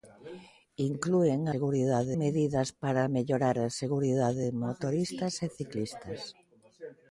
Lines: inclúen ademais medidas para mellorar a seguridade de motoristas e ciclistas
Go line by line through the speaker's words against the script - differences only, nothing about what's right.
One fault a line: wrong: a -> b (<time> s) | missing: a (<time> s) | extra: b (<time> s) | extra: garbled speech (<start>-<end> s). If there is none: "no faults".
wrong: ademais -> seguridade (1.5 s)